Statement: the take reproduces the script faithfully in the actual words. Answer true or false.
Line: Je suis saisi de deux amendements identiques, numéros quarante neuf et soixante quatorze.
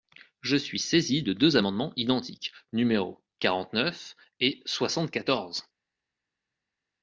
true